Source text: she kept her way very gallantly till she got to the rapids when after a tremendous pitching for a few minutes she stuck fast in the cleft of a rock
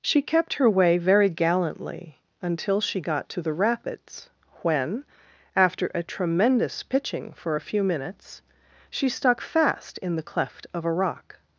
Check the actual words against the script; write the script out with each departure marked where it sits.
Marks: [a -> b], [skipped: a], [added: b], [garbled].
she kept her way very gallantly [till -> until] she got to the rapids when after a tremendous pitching for a few minutes she stuck fast in the cleft of a rock